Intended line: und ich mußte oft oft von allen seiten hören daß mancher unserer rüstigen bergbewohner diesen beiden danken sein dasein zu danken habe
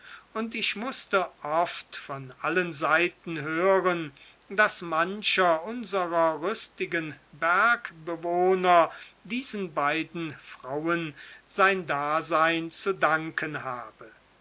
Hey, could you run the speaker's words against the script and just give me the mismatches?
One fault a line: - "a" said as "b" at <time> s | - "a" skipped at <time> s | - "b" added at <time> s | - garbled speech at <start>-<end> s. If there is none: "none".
- "oft" skipped at 1.9 s
- "danken" said as "frauen" at 10.4 s